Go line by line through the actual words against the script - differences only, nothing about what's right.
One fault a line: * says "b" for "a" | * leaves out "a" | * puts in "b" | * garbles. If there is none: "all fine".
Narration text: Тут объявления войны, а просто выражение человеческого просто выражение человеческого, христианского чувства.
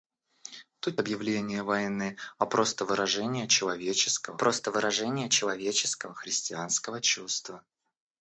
all fine